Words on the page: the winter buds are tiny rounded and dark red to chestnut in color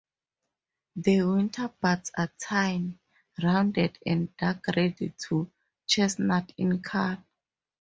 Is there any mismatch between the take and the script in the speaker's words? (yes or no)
no